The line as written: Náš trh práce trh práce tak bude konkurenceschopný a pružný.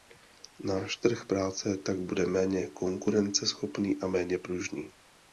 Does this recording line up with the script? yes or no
no